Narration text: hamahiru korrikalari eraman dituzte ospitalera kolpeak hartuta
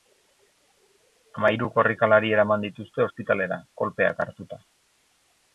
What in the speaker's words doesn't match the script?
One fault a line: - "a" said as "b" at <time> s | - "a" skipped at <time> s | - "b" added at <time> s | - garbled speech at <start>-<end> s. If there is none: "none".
none